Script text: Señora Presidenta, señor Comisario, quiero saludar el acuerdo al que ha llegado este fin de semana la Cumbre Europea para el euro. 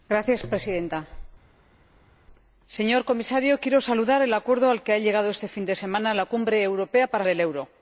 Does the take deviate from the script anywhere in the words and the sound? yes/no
no